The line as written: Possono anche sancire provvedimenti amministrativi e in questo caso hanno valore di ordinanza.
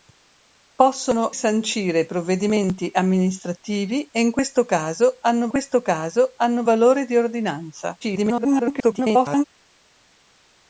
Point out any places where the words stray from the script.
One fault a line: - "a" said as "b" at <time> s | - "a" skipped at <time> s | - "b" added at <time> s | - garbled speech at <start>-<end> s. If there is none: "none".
- "anche" skipped at 1.3 s
- "questo caso hanno" added at 5.5 s
- garbled speech at 8.0-9.4 s